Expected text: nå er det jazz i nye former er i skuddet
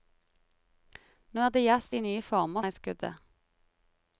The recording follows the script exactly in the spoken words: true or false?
true